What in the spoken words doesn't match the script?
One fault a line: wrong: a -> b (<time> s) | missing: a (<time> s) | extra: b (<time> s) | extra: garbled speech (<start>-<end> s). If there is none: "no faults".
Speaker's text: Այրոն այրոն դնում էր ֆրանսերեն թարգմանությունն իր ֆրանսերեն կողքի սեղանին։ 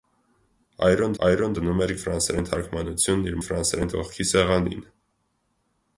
no faults